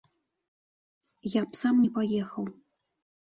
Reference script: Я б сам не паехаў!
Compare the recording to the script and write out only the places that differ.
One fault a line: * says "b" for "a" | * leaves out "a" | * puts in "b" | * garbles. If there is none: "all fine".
all fine